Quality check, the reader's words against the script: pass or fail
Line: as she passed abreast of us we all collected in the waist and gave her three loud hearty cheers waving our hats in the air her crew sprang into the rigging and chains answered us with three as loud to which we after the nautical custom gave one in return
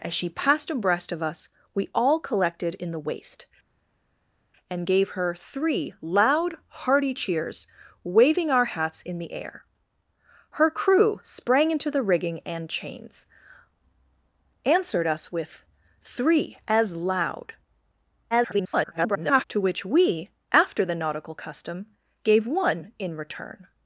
fail